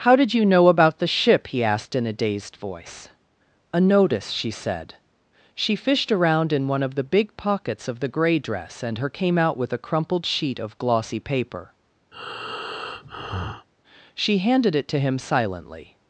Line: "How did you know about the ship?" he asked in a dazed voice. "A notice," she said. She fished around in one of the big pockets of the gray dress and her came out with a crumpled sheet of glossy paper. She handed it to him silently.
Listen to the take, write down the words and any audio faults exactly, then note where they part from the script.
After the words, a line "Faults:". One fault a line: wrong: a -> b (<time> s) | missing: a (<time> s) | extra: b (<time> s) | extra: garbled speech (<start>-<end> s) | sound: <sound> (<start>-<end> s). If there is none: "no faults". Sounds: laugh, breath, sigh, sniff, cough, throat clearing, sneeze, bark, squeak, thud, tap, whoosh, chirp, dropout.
"How did you know about the ship?" he asked in a dazed voice. "A notice," she said. She fished around in one of the big pockets of the gray dress and her came out with a crumpled sheet of glossy paper. She handed it to him silently.
Faults:
sound: breath (12.1-13.7 s)